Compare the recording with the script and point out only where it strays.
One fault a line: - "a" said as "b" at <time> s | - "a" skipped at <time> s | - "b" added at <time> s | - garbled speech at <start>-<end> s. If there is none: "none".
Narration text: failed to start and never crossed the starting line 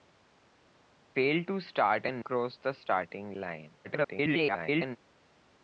- "never" skipped at 2.2 s
- garbled speech at 3.8-5.0 s